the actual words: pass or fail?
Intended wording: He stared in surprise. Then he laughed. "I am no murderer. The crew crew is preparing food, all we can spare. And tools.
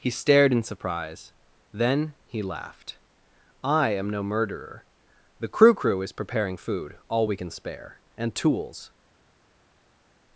pass